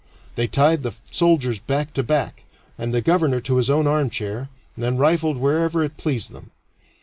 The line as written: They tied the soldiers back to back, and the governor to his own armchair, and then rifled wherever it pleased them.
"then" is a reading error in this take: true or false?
false